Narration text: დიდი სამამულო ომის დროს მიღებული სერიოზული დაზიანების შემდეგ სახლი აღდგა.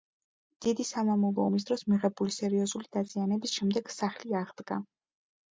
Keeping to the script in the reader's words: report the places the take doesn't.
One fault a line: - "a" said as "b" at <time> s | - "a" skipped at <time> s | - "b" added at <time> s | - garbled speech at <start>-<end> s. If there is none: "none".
none